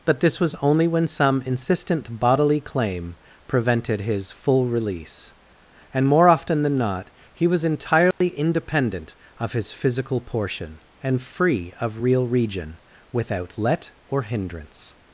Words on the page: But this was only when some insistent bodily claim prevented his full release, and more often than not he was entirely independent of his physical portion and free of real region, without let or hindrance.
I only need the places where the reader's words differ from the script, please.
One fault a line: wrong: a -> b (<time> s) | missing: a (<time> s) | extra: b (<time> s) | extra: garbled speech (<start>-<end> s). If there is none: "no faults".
no faults